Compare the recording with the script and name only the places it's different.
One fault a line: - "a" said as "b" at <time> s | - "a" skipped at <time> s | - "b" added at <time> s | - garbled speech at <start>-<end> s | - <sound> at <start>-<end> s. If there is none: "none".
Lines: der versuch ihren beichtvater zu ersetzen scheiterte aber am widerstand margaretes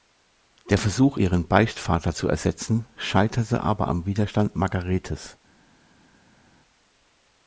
none